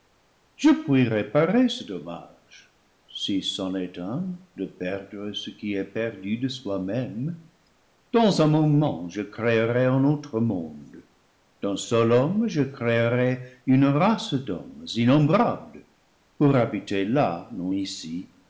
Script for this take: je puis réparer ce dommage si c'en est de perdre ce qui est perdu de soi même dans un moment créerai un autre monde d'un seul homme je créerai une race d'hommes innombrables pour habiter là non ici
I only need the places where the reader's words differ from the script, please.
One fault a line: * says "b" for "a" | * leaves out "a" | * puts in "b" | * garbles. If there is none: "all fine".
* puts in "un"
* puts in "je"